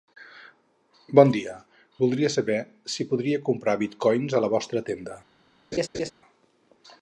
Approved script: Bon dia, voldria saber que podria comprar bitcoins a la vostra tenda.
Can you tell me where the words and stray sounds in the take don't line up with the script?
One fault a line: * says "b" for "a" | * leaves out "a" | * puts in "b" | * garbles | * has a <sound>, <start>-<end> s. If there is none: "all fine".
* says "si" for "que"
* has a laugh, 5.7-6.1 s